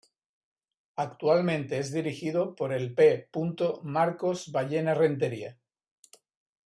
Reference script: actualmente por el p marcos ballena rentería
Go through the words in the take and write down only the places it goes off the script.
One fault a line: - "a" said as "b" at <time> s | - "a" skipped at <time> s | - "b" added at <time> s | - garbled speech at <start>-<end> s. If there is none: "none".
- "es dirigido" added at 1.8 s